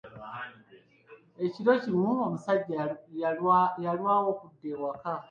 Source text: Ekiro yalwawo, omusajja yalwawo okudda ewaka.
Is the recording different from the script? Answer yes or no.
yes